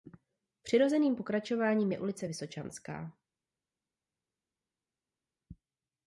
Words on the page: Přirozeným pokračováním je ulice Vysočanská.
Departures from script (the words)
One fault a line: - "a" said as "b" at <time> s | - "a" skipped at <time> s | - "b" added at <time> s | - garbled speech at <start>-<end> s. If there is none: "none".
none